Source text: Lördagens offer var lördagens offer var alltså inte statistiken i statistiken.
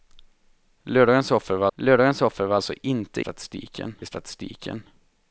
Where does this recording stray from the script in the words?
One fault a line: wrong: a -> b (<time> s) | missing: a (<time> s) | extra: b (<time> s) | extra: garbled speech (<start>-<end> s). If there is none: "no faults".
no faults